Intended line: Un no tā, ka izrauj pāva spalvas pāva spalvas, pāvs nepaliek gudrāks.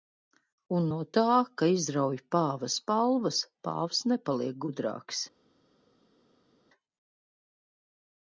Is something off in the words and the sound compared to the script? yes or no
yes